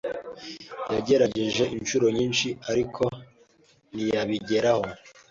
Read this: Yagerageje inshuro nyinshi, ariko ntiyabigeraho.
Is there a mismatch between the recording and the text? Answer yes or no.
no